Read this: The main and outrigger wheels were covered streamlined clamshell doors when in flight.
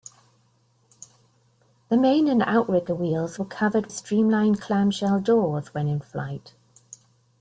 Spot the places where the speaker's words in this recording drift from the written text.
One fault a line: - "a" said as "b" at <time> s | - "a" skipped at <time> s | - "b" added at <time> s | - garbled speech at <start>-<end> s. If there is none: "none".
none